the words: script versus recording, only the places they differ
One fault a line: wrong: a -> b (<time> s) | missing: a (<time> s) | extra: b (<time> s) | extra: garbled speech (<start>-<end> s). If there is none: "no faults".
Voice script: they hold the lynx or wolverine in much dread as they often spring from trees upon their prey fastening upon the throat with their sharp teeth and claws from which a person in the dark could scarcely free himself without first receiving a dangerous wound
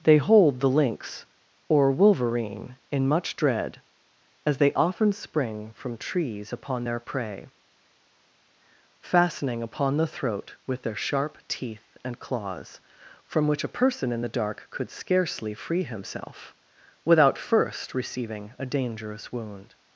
no faults